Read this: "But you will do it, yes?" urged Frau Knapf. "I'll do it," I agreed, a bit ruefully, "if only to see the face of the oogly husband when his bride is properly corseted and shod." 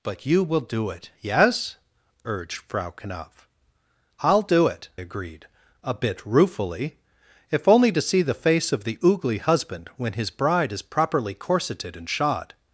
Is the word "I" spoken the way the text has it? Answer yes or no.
no